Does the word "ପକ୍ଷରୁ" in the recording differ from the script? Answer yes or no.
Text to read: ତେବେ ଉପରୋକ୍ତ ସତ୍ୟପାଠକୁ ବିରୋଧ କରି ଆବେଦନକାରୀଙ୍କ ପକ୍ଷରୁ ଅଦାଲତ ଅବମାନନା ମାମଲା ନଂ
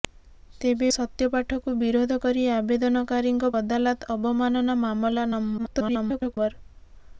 yes